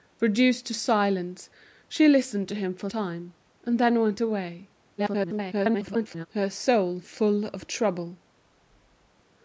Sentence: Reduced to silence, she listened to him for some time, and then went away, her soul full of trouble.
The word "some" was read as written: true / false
false